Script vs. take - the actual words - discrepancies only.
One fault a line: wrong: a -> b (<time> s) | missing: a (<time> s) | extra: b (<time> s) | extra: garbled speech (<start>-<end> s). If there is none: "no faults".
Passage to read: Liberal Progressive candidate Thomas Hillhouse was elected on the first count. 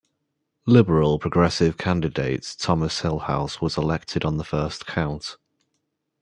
no faults